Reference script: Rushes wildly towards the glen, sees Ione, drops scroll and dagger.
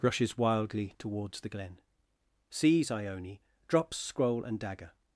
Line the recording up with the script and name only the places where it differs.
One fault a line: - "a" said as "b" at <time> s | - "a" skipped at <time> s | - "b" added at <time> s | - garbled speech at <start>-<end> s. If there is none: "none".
none